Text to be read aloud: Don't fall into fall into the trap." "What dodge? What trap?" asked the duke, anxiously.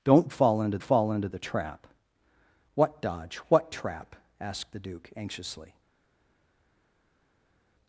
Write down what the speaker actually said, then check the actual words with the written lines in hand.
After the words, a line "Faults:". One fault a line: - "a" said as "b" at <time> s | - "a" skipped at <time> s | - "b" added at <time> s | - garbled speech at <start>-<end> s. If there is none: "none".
Don't fall into fall into the trap." "What dodge? What trap?" asked the duke, anxiously.
Faults:
none